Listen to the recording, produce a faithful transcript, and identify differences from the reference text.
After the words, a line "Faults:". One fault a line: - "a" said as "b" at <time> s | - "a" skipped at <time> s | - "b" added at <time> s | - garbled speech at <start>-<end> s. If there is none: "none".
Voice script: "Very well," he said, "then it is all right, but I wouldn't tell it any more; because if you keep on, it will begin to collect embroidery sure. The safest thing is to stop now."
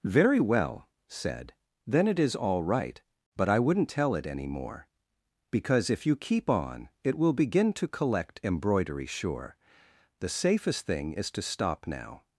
"Very well," said, "then it is all right, but I wouldn't tell it any more; because if you keep on, it will begin to collect embroidery sure. The safest thing is to stop now."
Faults:
- "he" skipped at 0.9 s